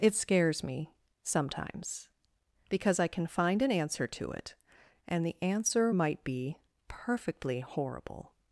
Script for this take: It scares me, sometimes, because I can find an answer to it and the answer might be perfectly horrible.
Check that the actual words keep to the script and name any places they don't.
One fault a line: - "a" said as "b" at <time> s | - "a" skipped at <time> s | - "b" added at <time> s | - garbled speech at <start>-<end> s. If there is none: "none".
none